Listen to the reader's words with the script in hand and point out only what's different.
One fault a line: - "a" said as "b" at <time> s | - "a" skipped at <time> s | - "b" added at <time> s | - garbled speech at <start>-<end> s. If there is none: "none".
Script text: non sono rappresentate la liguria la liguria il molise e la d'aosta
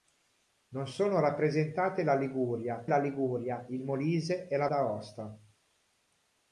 none